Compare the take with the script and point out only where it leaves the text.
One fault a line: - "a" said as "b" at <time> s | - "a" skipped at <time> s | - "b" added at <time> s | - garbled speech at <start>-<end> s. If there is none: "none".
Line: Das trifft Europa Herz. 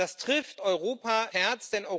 none